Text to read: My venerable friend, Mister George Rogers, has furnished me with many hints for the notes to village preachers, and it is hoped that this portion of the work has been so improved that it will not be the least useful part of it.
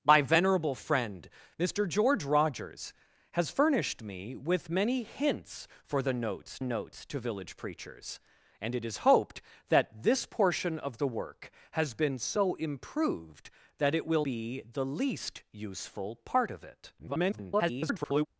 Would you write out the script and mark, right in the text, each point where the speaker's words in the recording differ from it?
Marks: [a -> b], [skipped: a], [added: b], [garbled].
My venerable friend, Mister George Rogers, has furnished me with many hints for the notes [added: notes] to village preachers, and it is hoped that this portion of the work has been so improved that it will [skipped: not] be the least useful part of it. [garbled]